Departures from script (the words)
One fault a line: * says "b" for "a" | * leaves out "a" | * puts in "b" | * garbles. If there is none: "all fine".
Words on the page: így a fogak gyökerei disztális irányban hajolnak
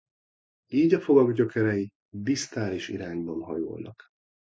all fine